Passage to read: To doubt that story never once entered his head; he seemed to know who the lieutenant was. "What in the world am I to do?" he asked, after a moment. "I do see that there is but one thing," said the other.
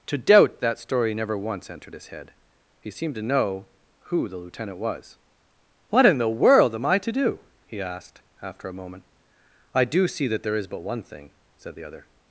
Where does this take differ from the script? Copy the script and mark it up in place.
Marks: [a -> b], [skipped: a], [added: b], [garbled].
To doubt that story never once entered his head; he seemed to know who the lieutenant was. "What in the world am I to do?" he asked, after a moment. "I do see that there is but one thing," said the other.